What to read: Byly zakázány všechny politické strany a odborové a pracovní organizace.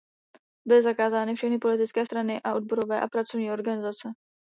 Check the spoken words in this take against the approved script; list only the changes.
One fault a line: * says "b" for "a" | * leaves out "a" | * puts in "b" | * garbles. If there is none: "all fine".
all fine